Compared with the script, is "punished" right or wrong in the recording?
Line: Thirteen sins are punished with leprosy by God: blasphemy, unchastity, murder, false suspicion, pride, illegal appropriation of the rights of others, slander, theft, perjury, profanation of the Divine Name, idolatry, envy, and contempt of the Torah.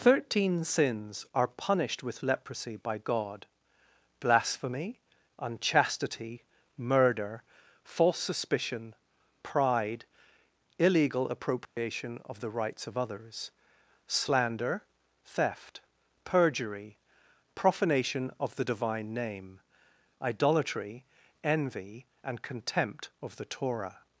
right